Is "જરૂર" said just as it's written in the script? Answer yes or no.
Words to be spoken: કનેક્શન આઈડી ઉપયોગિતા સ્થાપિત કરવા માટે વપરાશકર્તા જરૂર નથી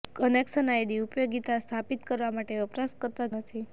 no